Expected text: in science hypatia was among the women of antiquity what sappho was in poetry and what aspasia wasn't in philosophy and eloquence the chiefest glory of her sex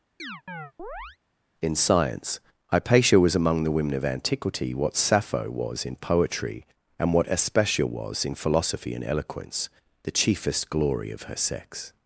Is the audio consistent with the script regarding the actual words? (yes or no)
no